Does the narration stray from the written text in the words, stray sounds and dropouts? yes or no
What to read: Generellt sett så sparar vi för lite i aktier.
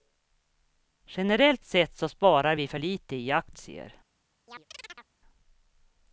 yes